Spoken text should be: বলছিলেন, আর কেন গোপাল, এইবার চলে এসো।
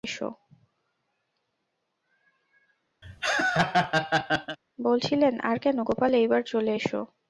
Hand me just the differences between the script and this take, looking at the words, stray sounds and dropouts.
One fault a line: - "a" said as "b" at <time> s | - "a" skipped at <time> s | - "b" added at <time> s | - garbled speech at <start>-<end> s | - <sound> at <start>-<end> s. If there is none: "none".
- laugh at 3.0-4.6 s